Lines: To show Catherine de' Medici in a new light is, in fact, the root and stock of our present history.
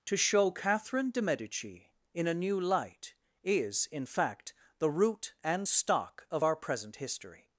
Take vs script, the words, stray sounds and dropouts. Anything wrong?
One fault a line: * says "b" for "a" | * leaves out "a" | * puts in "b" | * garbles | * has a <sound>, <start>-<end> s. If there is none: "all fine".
all fine